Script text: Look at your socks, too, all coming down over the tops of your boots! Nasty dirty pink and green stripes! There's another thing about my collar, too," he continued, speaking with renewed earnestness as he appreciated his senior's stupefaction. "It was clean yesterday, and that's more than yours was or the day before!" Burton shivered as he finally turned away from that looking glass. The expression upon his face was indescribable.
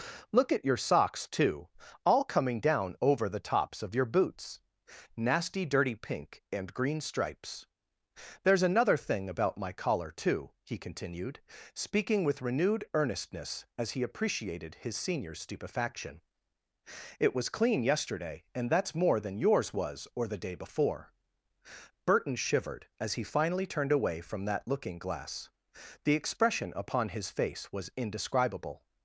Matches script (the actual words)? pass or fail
pass